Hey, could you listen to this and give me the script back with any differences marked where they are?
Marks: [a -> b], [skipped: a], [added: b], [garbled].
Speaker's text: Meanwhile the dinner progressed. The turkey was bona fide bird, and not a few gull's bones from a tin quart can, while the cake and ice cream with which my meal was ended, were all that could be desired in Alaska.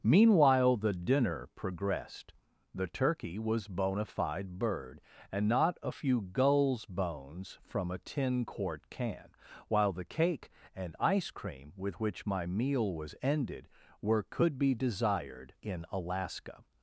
Meanwhile the dinner progressed. The turkey was bona fide bird, and not a few gull's bones from a tin quart can, while the cake and ice cream with which my meal was ended, were [skipped: all that] could be desired in Alaska.